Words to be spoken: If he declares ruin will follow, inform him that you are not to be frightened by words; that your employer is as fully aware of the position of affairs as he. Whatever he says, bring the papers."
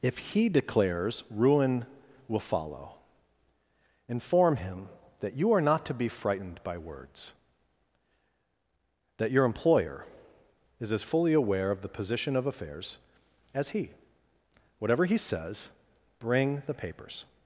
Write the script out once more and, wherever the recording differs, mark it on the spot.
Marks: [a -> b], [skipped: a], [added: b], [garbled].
If he declares ruin will follow, inform him that you are not to be frightened by words; that your employer is as fully aware of the position of affairs as he. Whatever he says, bring the papers."